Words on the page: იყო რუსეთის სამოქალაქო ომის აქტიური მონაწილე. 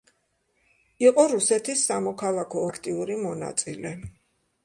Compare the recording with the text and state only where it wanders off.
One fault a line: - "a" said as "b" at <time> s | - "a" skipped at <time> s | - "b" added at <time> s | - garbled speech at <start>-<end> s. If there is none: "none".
- "ომის" skipped at 2.6 s